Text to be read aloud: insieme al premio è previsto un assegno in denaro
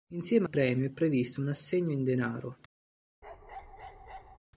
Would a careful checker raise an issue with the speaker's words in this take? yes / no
yes